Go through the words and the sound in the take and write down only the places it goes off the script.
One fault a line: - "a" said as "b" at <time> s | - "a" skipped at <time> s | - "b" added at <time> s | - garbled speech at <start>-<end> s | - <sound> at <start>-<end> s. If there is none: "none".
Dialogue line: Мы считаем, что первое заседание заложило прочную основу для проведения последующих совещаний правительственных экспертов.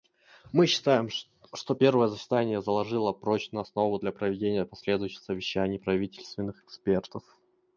none